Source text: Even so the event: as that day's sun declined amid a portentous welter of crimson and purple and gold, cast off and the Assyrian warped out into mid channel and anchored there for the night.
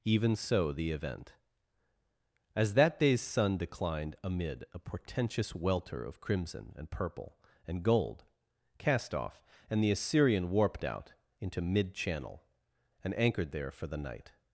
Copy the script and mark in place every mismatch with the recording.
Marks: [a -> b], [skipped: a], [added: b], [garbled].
Even so the event: as that day's sun declined amid a portentous welter of crimson and purple and gold, cast off and the Assyrian warped out into mid channel and anchored there for the night.